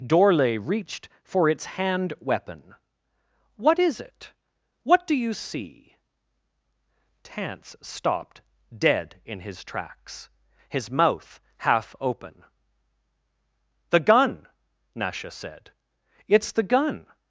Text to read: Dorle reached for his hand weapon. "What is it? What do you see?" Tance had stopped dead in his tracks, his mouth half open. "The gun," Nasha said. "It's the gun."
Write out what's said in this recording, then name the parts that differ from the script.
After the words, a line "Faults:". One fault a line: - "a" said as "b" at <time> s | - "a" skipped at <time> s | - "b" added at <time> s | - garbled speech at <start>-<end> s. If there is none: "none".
Dorle reached for its hand weapon. "What is it? What do you see?" Tance stopped dead in his tracks, his mouth half open. "The gun," Nasha said. "It's the gun."
Faults:
- "his" said as "its" at 1.5 s
- "had" skipped at 7.8 s